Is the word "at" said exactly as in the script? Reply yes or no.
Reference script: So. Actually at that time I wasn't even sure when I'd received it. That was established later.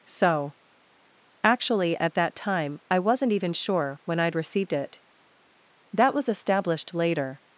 yes